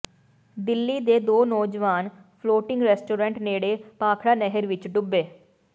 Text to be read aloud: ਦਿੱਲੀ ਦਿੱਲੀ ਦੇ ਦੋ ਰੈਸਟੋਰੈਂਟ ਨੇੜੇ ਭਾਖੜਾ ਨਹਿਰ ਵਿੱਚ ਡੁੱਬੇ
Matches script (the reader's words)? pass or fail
fail